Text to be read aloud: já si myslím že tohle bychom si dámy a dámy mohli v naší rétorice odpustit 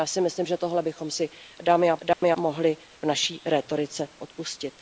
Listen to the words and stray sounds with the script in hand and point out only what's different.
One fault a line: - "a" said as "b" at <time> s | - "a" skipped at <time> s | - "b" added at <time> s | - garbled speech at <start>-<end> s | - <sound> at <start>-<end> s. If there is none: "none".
- dropout at 2.1-2.2 s